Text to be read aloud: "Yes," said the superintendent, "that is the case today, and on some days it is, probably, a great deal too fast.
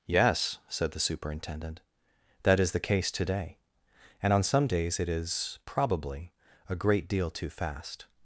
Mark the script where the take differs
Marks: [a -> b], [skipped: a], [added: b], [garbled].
"Yes," said the superintendent, "that is the case today, and on some days it is, probably, a great deal too fast.